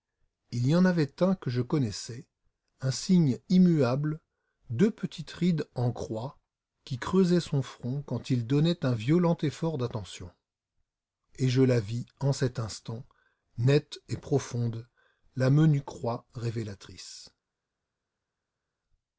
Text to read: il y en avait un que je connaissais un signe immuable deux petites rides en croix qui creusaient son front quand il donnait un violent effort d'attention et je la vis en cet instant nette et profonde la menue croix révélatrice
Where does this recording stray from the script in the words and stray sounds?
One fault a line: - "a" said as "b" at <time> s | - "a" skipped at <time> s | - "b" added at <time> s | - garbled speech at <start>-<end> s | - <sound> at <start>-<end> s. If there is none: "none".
none